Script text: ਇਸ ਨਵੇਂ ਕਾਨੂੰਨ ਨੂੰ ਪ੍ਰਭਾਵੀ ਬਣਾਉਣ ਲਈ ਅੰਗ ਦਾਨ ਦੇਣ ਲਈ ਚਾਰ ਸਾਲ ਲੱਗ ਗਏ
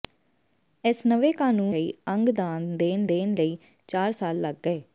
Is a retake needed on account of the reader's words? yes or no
yes